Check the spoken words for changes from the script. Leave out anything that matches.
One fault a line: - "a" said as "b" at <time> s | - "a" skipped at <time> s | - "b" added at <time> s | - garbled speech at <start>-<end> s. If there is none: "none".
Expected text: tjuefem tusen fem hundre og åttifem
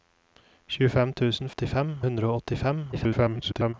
- "fem" said as "åttifem" at 1.5 s
- garbled speech at 2.9-3.7 s